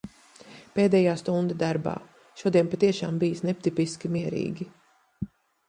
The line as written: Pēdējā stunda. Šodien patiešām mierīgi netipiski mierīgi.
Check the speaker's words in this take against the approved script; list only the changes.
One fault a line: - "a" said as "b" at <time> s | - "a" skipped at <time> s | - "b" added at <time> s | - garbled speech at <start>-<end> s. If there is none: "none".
- "darbā" added at 1.6 s
- "mierīgi" said as "bijis" at 3.2 s